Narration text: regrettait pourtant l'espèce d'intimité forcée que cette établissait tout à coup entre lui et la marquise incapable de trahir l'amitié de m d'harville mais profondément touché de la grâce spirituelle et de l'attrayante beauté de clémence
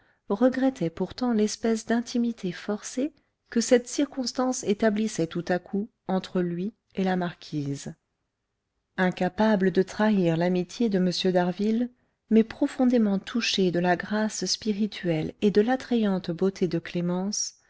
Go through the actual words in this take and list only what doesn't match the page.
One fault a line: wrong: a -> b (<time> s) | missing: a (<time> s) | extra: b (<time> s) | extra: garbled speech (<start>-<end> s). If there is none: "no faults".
extra: circonstance (3.9 s)